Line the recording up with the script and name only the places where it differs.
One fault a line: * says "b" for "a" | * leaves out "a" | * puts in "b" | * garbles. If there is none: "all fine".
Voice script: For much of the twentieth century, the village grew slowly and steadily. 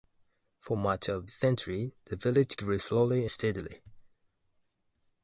* leaves out "the twentieth"
* leaves out "and"